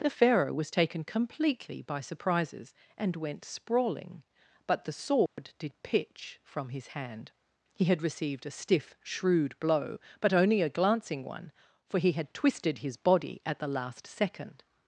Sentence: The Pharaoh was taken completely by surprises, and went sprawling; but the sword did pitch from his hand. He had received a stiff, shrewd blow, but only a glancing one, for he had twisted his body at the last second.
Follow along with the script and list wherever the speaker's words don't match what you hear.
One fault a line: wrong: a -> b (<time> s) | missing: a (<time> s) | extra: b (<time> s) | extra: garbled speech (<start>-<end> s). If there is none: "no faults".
no faults